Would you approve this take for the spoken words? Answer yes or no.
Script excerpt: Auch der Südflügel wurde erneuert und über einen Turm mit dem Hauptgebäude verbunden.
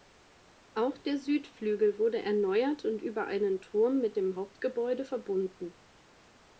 yes